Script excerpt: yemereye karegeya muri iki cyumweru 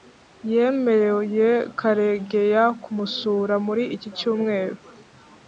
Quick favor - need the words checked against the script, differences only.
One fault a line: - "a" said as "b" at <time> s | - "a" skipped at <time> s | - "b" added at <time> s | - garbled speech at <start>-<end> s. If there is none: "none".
- "kumusura" added at 2.8 s